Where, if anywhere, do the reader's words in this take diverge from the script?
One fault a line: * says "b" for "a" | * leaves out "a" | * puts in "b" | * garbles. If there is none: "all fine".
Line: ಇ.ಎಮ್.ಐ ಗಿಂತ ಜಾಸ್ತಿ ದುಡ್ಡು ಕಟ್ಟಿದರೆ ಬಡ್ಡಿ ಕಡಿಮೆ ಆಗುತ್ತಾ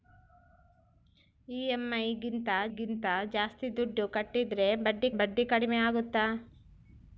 * puts in "ಗಿಂತ"
* puts in "ಬಡ್ಡಿ"